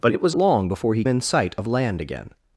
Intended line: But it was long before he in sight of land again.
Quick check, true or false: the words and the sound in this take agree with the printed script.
true